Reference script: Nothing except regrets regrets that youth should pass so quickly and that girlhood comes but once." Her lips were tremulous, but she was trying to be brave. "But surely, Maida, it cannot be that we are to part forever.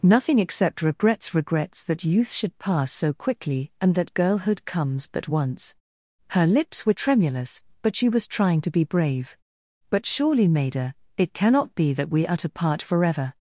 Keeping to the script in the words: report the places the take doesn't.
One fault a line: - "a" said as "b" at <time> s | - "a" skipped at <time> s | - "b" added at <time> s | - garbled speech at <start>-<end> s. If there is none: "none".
none